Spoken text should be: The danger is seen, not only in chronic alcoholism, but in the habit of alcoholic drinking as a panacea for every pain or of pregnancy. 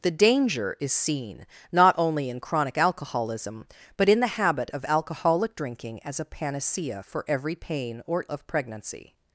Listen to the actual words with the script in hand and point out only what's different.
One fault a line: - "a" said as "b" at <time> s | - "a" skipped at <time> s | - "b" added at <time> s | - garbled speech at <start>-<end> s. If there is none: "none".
none